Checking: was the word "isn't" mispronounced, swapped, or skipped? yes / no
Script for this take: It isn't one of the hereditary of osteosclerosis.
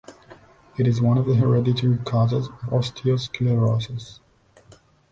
yes